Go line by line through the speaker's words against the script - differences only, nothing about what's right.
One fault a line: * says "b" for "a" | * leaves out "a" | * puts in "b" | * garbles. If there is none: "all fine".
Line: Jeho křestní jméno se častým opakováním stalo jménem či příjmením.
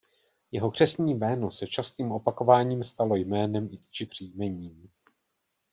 all fine